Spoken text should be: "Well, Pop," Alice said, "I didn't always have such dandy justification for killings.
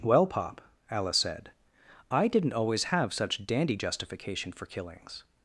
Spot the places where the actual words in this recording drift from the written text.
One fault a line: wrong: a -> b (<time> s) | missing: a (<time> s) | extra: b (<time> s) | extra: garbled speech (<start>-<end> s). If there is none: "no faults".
no faults